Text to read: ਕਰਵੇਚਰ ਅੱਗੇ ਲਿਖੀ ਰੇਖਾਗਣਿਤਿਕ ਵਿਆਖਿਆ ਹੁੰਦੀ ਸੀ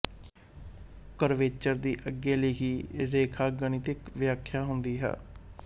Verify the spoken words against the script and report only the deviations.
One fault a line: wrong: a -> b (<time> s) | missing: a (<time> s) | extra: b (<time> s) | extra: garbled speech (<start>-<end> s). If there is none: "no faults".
extra: ਦੀ (1.8 s)
wrong: ਸੀ -> ਹੈ (5.0 s)